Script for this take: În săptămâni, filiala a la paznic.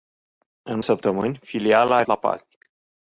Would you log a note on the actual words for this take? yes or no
no